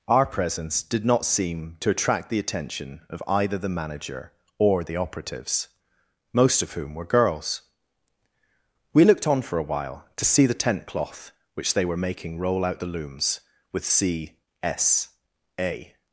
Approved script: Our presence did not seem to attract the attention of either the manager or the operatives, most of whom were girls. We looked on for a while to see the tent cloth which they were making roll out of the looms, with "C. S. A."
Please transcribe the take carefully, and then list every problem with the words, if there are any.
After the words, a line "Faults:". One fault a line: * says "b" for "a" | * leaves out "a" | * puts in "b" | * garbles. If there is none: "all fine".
Our presence did not seem to attract the attention of either the manager or the operatives, most of whom were girls. We looked on for a while to see the tent cloth which they were making roll out the looms, with "C. S. A."
Faults:
* leaves out "of"